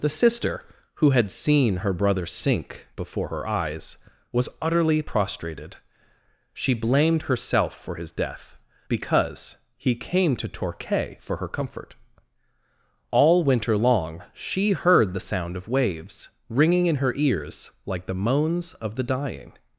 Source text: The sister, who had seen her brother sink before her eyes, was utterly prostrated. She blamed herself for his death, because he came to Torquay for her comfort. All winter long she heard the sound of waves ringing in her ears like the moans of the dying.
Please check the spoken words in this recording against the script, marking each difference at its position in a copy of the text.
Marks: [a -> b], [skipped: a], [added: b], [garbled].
The sister, who had seen her brother sink before her eyes, was utterly prostrated. She blamed herself for his death, because he came to Torquay for her comfort. All winter long she heard the sound of waves ringing in her ears like the moans of the dying.